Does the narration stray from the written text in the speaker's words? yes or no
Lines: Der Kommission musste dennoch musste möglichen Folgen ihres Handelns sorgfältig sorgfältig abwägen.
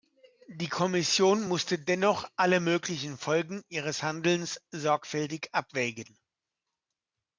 yes